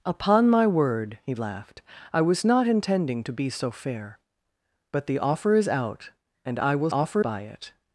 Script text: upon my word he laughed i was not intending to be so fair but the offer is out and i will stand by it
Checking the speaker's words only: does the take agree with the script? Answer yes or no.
no